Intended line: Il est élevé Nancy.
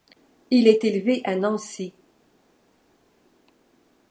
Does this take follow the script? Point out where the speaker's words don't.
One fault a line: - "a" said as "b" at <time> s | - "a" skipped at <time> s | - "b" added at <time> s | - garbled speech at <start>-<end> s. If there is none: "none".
- "à" added at 1.2 s